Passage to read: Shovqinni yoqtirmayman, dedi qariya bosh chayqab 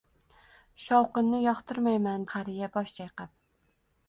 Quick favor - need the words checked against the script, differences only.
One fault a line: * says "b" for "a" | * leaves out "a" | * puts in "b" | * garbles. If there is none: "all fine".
* leaves out "dedi"